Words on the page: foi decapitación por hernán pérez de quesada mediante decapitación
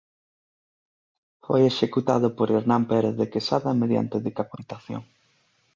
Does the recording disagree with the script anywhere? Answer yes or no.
yes